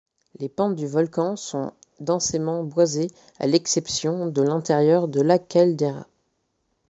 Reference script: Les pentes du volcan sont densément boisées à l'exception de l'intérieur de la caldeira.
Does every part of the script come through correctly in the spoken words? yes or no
yes